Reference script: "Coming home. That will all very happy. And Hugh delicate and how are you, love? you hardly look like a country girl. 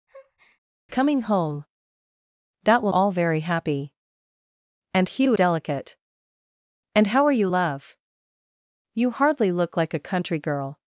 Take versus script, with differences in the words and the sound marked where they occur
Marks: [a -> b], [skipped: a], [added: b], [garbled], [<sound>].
[breath] "Coming home. That will all very happy. And Hugh delicate and how are you, love? you hardly look like a country girl.